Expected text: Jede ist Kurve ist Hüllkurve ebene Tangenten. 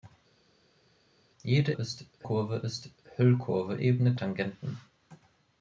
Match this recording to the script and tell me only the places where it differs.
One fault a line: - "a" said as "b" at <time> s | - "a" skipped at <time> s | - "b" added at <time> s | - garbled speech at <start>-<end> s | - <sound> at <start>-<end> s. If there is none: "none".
none